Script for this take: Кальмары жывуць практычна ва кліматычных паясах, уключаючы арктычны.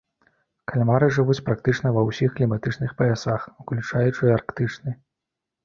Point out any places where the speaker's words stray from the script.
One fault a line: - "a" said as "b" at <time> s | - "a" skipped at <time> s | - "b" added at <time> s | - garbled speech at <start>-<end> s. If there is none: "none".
- "ўсіх" added at 2.1 s